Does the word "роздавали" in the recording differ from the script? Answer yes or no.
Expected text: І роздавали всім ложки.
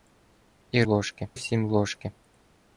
yes